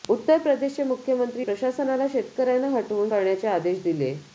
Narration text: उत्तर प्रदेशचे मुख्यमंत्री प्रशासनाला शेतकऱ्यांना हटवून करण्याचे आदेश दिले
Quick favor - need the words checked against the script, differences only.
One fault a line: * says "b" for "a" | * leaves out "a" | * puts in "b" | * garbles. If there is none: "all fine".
all fine